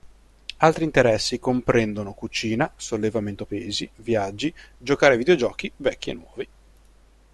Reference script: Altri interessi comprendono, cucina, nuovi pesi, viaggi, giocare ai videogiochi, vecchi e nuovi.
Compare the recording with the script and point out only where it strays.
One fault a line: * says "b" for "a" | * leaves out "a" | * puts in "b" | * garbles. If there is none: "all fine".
* says "sollevamento" for "nuovi"